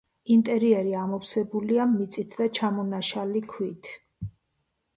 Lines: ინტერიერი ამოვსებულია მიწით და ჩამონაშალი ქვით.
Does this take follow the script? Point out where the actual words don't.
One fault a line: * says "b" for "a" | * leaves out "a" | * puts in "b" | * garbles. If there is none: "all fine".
all fine